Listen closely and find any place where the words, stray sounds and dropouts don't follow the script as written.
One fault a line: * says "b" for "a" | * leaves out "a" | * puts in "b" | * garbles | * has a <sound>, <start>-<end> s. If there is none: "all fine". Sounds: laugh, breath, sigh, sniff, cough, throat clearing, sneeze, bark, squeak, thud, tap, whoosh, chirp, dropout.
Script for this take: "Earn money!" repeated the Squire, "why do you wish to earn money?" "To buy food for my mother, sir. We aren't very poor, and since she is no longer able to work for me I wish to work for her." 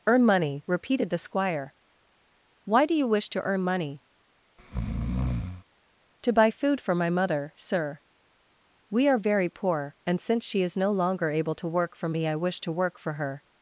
* has a breath, 4.6-5.6 s
* says "are" for "aren't"